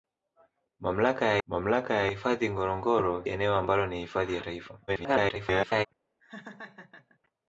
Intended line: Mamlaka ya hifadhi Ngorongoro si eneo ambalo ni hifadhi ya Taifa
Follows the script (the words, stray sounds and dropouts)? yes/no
no